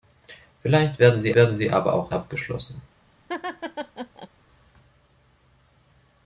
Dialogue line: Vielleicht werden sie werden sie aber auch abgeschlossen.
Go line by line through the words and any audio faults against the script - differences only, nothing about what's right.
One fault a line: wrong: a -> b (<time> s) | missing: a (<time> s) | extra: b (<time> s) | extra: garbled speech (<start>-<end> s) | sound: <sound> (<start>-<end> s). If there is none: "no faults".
sound: laugh (3.3-4.3 s)